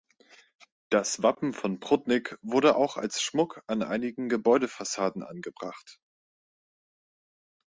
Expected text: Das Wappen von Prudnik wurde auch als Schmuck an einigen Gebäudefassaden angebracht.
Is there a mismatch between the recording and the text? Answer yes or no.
no